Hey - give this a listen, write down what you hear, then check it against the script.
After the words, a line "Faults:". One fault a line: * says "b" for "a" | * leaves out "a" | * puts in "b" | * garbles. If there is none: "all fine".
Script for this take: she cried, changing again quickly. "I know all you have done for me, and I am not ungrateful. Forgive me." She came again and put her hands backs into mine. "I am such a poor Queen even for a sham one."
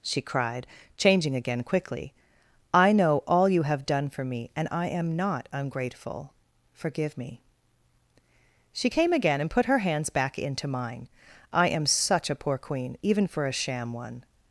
she cried, changing again quickly. "I know all you have done for me, and I am not ungrateful. Forgive me." She came again and put her hands back into mine. "I am such a poor Queen even for a sham one."
Faults:
* says "back" for "backs"